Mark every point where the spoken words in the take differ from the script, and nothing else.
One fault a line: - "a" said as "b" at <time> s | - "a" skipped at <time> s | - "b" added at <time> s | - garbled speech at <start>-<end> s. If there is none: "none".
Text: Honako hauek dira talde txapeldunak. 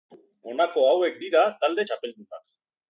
none